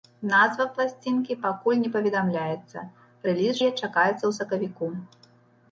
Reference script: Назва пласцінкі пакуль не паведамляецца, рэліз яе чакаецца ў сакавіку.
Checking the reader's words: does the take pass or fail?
pass